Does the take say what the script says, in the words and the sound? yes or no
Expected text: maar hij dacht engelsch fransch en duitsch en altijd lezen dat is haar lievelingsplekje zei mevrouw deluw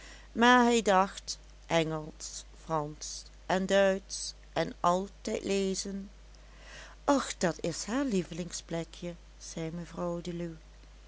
no